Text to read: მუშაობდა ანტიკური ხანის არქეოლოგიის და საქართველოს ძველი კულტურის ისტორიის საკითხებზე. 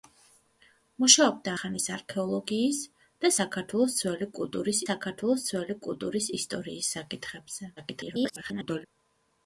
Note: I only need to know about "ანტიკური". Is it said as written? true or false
false